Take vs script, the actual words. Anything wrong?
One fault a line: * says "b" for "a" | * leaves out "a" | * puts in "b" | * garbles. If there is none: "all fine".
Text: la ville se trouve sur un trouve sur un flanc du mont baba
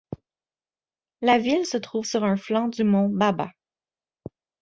* leaves out "trouve sur un"